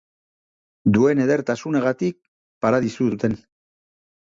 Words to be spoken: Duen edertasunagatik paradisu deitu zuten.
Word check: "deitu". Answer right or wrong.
wrong